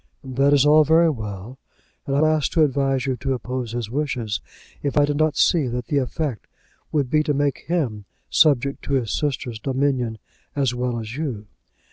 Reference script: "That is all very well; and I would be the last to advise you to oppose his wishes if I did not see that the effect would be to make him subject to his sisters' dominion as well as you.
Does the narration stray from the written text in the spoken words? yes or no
yes